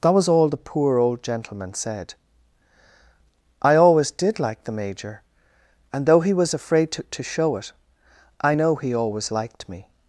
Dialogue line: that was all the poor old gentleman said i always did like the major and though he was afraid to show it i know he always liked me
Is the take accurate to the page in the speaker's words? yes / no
no